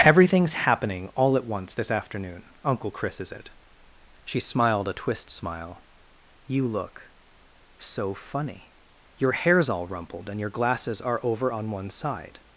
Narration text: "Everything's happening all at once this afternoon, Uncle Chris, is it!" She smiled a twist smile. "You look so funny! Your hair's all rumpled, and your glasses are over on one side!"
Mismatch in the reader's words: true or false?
false